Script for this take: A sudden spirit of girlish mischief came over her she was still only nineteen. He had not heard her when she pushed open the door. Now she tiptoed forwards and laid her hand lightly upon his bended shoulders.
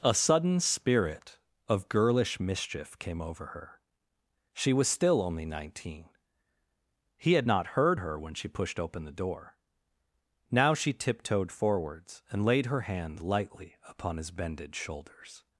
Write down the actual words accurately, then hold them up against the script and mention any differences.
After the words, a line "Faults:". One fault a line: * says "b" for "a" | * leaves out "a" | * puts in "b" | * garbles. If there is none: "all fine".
A sudden spirit of girlish mischief came over her she was still only nineteen. He had not heard her when she pushed open the door. Now she tiptoed forwards and laid her hand lightly upon his bended shoulders.
Faults:
all fine